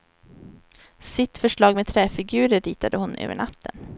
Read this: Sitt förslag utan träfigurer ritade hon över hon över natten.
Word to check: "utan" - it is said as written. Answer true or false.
false